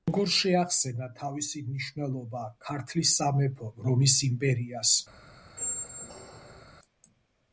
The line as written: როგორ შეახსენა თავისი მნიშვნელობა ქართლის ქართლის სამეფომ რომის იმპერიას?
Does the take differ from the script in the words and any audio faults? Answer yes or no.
yes